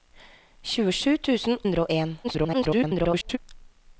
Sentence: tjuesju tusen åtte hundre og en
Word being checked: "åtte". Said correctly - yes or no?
no